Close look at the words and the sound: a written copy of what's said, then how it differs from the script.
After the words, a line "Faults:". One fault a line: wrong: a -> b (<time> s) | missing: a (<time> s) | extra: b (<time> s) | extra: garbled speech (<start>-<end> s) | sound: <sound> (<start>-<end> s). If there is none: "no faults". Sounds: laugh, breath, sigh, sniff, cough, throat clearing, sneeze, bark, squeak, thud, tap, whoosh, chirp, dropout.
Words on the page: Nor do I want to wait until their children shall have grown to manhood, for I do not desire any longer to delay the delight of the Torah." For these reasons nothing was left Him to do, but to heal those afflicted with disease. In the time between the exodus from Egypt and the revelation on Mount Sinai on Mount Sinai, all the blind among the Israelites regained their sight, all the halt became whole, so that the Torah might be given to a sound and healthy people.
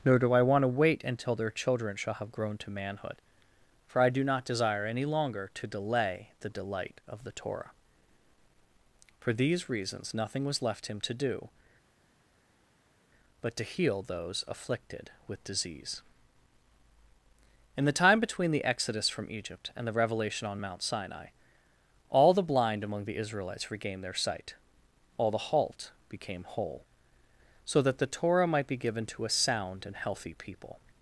Nor do I want to wait until their children shall have grown to manhood, for I do not desire any longer to delay the delight of the Torah." For these reasons nothing was left Him to do, but to heal those afflicted with disease. In the time between the exodus from Egypt and the revelation on Mount Sinai, all the blind among the Israelites regained their sight, all the halt became whole, so that the Torah might be given to a sound and healthy people.
Faults:
missing: on Mount Sinai (21.3 s)